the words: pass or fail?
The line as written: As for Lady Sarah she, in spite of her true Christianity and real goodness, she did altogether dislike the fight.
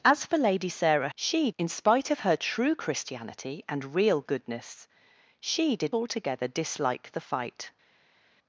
pass